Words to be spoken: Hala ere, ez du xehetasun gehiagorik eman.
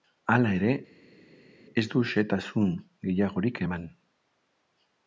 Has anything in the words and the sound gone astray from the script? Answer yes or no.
no